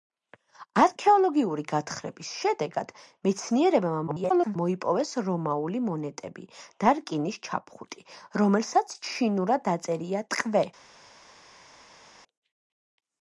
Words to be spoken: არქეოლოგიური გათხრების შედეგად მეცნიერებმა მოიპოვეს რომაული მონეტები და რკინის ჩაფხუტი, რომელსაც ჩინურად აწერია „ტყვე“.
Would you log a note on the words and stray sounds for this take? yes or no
yes